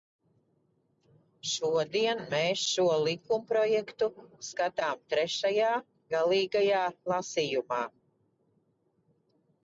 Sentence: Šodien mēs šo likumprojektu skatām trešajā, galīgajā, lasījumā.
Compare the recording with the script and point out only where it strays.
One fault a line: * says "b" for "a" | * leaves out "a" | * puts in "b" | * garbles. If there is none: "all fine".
all fine